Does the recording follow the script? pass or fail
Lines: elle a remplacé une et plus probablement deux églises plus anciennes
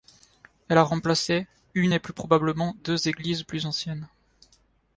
pass